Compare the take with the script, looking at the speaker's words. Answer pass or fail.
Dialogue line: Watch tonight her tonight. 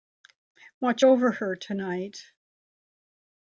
fail